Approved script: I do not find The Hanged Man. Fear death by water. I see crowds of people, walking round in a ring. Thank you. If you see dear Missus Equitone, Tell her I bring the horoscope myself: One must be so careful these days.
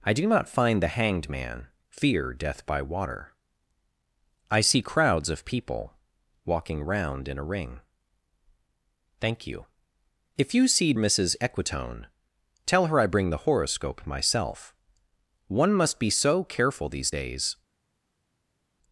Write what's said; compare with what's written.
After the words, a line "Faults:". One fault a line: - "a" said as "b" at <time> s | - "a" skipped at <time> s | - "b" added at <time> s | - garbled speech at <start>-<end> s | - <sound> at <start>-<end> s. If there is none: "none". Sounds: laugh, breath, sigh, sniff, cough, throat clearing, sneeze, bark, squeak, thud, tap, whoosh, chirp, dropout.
I do not find The Hanged Man. Fear death by water. I see crowds of people, walking round in a ring. Thank you. If you see Missus Equitone, Tell her I bring the horoscope myself: One must be so careful these days.
Faults:
- "dear" skipped at 10.9 s